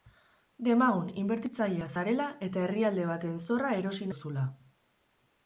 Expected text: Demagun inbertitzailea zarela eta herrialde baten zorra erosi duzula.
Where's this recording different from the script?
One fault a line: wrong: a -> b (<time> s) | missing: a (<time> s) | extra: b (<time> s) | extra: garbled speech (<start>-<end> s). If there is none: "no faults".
no faults